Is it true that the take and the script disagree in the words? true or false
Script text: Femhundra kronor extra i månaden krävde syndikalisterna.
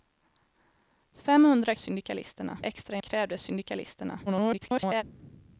true